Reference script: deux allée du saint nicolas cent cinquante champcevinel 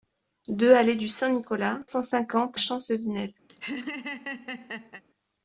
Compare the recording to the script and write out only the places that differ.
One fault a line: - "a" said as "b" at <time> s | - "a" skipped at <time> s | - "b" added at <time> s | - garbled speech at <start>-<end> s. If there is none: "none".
none